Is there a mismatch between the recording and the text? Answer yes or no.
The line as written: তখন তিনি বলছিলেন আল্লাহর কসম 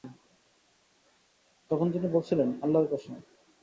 no